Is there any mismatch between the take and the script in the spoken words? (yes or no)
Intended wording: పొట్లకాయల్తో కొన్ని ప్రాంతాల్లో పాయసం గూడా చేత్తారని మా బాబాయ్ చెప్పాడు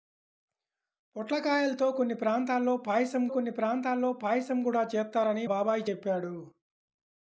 yes